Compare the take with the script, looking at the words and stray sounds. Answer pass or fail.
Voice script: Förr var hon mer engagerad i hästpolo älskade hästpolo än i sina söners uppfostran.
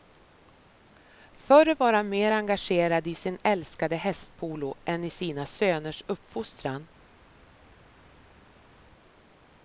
fail